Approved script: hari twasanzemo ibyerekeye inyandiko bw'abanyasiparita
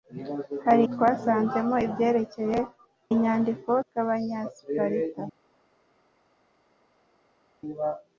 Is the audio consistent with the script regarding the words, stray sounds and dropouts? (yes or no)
yes